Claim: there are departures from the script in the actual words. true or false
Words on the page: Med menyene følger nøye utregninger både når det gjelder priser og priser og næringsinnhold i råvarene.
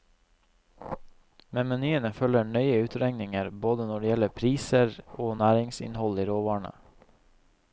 true